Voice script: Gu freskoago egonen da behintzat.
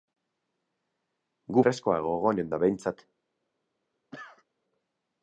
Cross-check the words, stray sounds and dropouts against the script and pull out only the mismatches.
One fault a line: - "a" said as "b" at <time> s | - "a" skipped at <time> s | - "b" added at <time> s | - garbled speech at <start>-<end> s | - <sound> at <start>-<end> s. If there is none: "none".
- cough at 4.1-4.5 s